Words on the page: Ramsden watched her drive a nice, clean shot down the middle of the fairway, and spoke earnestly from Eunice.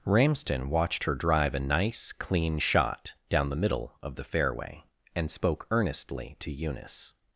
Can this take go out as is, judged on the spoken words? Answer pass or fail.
fail